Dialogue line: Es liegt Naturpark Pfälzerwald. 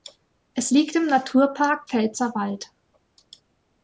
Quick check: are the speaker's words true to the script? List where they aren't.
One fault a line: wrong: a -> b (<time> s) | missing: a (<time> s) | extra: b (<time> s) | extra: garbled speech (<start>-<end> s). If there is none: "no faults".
extra: im (0.9 s)